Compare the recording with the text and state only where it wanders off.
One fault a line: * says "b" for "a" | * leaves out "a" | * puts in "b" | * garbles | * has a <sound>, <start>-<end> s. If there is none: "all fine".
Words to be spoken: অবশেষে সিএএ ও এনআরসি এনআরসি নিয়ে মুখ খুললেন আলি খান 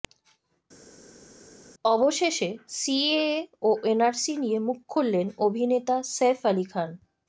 * leaves out "এনআরসি"
* puts in "অভিনেতা সইফ"